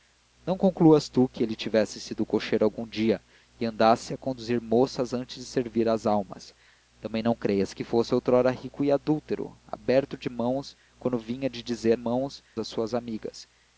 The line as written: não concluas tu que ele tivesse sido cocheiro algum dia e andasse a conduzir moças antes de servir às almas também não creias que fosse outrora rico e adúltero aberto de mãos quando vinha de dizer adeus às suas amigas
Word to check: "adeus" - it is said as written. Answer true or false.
false